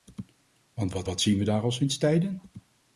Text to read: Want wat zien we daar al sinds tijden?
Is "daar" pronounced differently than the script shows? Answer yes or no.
no